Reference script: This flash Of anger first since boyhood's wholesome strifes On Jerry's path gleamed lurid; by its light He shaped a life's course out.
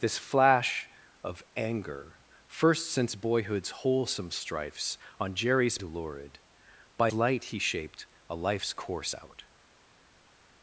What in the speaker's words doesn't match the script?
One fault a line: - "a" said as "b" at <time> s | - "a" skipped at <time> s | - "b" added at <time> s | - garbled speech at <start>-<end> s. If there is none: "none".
- "path gleamed" skipped at 5.8 s
- "its" skipped at 7.1 s